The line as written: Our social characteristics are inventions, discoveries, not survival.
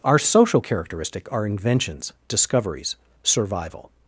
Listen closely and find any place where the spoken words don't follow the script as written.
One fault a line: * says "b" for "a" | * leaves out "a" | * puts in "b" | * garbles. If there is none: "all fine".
* says "characteristic" for "characteristics"
* leaves out "not"